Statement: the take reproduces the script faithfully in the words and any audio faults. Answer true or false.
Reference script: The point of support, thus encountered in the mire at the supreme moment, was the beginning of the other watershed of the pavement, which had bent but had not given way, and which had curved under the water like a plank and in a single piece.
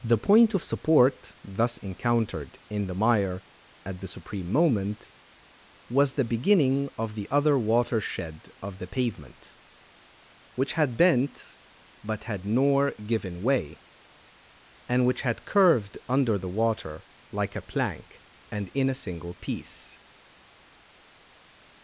false